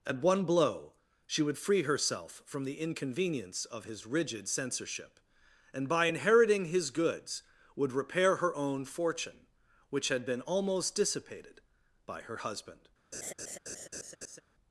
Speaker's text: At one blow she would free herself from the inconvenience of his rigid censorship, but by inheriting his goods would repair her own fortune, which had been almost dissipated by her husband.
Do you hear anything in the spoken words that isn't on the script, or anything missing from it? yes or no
yes